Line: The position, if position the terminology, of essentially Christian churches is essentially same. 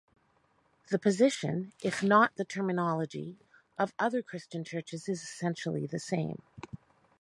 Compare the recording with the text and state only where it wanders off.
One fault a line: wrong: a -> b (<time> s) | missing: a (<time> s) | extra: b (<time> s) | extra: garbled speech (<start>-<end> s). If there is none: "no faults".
wrong: position -> not (2.0 s)
wrong: essentially -> other (4.0 s)
extra: the (5.9 s)